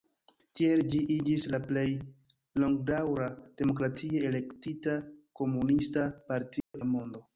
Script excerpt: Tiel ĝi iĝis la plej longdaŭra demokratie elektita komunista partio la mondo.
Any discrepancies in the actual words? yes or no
no